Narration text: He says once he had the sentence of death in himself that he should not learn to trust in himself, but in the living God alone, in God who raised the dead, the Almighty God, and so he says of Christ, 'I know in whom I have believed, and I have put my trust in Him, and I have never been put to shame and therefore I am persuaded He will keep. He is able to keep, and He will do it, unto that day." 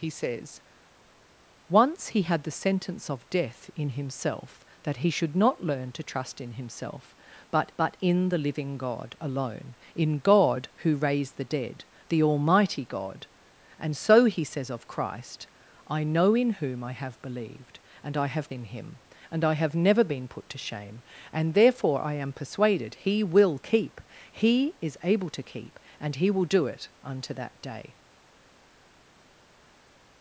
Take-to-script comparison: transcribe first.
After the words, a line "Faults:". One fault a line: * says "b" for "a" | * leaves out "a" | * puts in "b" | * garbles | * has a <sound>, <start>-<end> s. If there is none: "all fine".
He says once he had the sentence of death in himself that he should not learn to trust in himself, but but in the living God alone, in God who raised the dead, the Almighty God, and so he says of Christ, 'I know in whom I have believed, and I have in Him, and I have never been put to shame and therefore I am persuaded He will keep. He is able to keep, and He will do it, unto that day."
Faults:
* puts in "but"
* leaves out "put my trust"